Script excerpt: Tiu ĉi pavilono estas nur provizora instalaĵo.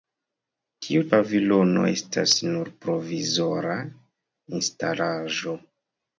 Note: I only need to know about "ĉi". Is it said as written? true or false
false